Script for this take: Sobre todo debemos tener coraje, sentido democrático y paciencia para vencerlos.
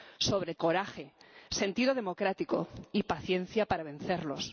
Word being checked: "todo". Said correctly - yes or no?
no